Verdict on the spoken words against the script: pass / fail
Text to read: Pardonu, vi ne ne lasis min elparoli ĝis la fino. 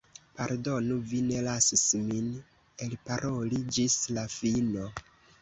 fail